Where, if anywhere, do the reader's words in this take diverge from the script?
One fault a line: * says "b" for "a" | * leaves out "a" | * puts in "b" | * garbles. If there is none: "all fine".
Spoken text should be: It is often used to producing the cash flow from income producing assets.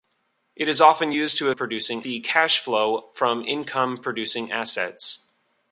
all fine